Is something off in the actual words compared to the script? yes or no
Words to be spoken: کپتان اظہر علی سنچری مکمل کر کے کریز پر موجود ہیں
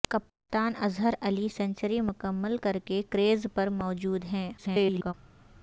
yes